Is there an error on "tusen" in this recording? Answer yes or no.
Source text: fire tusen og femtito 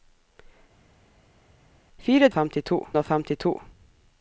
yes